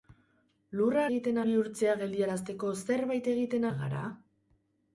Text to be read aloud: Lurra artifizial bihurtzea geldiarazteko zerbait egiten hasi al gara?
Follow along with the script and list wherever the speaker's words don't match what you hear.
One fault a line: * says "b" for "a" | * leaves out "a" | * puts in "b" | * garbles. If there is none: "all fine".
* says "egiten" for "artifizial"
* leaves out "hasi"